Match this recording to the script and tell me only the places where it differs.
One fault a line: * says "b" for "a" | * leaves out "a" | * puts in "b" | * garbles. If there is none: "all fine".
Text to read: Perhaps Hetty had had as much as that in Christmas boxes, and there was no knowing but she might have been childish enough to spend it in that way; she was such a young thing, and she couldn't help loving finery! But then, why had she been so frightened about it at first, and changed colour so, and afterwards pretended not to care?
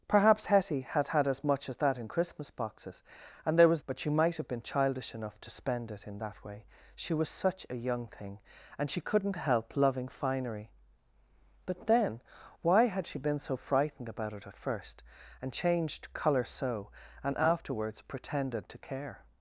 * leaves out "no knowing"
* leaves out "not"